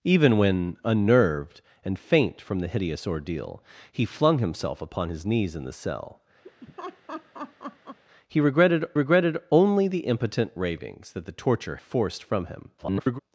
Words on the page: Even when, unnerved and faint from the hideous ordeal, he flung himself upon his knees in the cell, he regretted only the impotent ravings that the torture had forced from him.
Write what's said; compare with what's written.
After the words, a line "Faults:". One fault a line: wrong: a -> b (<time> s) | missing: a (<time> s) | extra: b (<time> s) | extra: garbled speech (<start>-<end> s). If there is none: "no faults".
Even when, unnerved and faint from the hideous ordeal, he flung himself upon his knees in the cell, he regretted regretted only the impotent ravings that the torture forced from him. [garbled]
Faults:
extra: regretted (8.9 s)
missing: had (11.8 s)
extra: garbled speech (12.8-13.2 s)